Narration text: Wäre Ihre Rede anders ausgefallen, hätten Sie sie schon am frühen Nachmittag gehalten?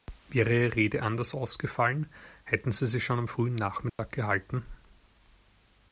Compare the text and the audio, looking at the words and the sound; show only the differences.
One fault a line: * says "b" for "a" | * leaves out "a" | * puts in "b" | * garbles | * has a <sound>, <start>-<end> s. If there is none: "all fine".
* has a dropout, 3.9-4.0 s